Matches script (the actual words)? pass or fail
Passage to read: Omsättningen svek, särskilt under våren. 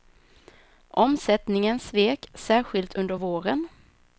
pass